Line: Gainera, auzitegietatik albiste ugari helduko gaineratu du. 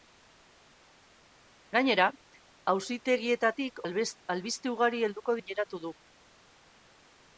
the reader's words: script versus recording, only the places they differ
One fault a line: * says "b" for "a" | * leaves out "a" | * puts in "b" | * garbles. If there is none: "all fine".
all fine